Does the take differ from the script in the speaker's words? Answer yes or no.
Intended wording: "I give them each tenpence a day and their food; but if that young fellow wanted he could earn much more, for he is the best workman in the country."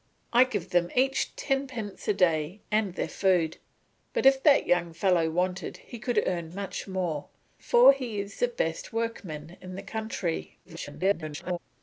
yes